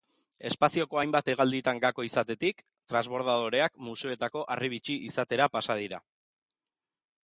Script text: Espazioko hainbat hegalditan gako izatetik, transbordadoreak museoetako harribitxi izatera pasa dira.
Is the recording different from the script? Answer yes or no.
no